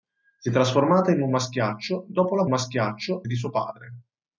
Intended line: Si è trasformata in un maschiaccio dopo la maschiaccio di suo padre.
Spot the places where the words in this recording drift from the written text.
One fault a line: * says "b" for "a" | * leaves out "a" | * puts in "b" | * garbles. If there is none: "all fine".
all fine